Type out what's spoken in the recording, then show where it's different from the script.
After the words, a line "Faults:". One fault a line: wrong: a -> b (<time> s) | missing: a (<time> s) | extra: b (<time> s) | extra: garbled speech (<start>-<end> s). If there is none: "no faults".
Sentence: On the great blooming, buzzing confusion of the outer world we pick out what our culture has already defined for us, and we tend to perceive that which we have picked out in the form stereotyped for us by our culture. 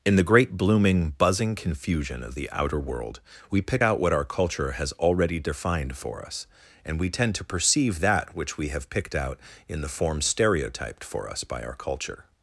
In the great blooming, buzzing confusion of the outer world we pick out what our culture has already defined for us, and we tend to perceive that which we have picked out in the form stereotyped for us by our culture.
Faults:
wrong: On -> In (0.0 s)